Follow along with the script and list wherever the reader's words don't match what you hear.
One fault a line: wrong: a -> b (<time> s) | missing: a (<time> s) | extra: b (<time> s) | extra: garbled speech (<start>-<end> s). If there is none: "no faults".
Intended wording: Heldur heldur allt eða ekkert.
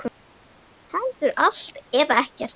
missing: heldur (1.3 s)